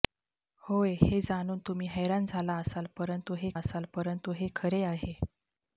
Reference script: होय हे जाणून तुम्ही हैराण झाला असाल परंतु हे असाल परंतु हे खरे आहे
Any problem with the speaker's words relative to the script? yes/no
no